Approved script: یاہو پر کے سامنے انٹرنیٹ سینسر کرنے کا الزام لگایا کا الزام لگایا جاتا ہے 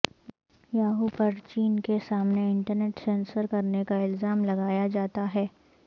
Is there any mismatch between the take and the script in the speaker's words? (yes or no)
yes